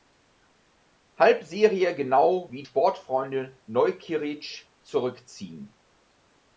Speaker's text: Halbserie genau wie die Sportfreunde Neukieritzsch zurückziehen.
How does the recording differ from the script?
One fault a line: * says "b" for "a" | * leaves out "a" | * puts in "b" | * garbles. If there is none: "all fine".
* leaves out "die"